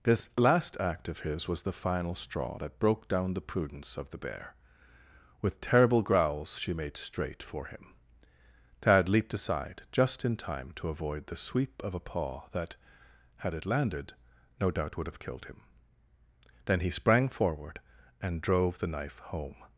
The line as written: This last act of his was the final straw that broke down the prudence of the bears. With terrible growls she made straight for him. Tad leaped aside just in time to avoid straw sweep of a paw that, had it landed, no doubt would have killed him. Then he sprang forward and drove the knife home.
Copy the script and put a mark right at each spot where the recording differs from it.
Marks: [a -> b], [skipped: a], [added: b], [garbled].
This last act of his was the final straw that broke down the prudence of the [bears. -> bear] With terrible growls she made straight for him. Tad leaped aside just in time to avoid [straw -> the] sweep of a paw that, had it landed, no doubt would have killed him. Then he sprang forward and drove the knife home.